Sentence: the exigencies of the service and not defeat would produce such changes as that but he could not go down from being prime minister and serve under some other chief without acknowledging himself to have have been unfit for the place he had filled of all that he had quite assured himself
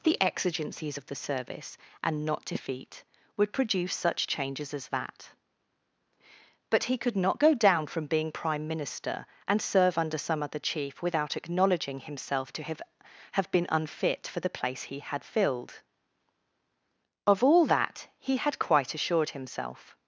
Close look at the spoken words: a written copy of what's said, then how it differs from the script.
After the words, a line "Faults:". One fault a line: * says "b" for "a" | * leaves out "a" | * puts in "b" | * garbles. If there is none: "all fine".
the exigencies of the service and not defeat would produce such changes as that but he could not go down from being prime minister and serve under some other chief without acknowledging himself to have have been unfit for the place he had filled of all that he had quite assured himself
Faults:
all fine